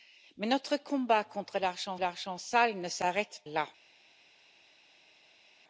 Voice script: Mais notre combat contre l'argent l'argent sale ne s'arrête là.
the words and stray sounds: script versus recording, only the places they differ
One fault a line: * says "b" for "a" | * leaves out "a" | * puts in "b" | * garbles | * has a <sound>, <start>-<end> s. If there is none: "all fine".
all fine